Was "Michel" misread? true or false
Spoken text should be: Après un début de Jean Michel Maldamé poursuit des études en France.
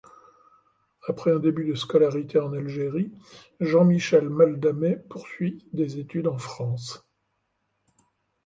false